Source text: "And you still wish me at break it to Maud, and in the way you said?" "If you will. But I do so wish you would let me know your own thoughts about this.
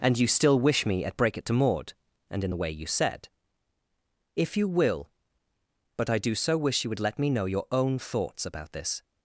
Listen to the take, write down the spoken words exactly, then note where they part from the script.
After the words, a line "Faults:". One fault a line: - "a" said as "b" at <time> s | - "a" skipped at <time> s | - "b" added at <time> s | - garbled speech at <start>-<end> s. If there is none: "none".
"And you still wish me at break it to Maud, and in the way you said?" "If you will. But I do so wish you would let me know your own thoughts about this.
Faults:
none